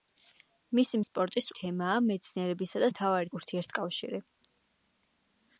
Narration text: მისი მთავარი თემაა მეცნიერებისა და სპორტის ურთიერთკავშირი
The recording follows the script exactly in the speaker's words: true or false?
false